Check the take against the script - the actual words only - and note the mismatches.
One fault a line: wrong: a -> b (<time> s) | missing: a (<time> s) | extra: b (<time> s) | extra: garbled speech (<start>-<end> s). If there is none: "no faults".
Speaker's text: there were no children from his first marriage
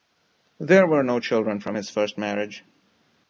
no faults